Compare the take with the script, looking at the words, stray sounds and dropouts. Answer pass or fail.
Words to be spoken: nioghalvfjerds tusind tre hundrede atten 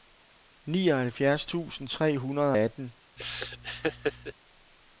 fail